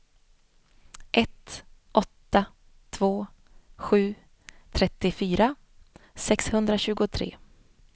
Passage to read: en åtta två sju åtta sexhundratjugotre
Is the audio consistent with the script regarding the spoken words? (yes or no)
no